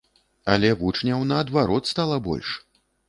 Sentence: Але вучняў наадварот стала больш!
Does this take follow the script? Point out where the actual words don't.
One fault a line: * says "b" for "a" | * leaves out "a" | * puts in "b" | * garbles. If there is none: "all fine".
all fine